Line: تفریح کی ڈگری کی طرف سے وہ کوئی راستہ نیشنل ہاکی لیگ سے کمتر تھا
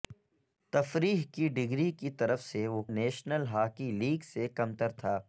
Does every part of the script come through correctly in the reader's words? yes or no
no